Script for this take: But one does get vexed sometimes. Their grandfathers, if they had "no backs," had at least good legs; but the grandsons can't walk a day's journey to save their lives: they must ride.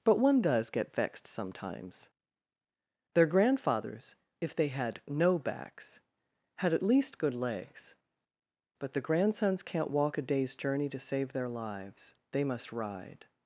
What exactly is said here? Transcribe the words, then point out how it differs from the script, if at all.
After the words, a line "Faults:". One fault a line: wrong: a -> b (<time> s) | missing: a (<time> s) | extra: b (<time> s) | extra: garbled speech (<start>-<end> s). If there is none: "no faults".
But one does get vexed sometimes. Their grandfathers, if they had "no backs," had at least good legs; but the grandsons can't walk a day's journey to save their lives: they must ride.
Faults:
no faults